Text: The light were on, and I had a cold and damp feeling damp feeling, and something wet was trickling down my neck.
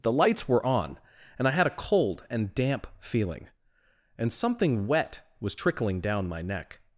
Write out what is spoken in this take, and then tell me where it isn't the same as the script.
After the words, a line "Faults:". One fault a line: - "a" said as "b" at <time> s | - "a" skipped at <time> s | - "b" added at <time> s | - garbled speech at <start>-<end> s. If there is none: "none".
The lights were on, and I had a cold and damp feeling, and something wet was trickling down my neck.
Faults:
- "light" said as "lights" at 0.1 s
- "damp feeling" skipped at 3.5 s